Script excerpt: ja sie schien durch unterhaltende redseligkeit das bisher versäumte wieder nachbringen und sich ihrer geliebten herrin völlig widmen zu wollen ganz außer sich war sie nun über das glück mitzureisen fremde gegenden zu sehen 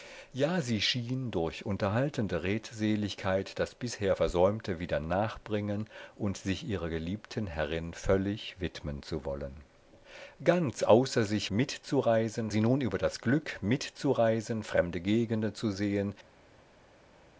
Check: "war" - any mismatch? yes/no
yes